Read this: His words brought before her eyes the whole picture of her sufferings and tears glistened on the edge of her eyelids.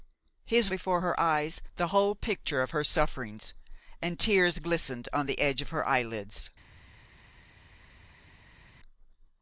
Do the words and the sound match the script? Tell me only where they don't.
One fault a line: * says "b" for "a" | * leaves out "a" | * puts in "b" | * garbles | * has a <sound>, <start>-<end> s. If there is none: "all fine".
* leaves out "words brought"